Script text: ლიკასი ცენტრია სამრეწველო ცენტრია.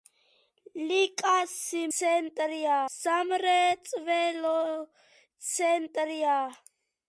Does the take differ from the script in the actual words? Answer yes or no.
no